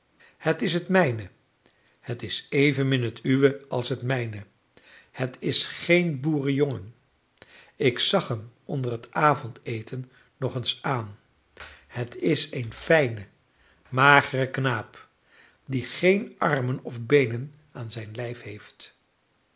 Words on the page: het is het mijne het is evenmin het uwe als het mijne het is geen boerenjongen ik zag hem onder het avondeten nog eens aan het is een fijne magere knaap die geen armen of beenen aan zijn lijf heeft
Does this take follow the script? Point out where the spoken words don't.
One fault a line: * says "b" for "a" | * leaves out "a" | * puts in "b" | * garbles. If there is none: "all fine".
all fine